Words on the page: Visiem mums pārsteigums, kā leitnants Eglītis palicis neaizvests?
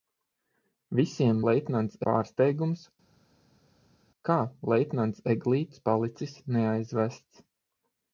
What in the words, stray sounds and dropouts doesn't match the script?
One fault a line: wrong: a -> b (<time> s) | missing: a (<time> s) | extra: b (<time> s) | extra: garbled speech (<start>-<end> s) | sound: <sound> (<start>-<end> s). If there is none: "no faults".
wrong: mums -> leitnants (1.5 s)